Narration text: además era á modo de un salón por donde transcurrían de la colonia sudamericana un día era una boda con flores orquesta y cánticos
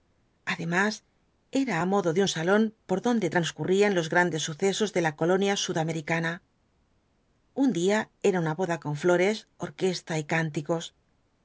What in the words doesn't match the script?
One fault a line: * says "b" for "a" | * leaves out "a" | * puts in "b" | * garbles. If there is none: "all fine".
* puts in "los grandes sucesos"